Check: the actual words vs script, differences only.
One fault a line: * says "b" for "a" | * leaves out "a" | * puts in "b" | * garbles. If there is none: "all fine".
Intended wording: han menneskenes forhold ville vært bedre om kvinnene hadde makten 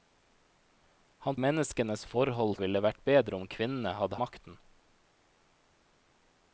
all fine